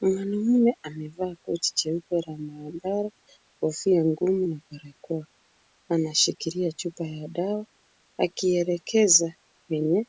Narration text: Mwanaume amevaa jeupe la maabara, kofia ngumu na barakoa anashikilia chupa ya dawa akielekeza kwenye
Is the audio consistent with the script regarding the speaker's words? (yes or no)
no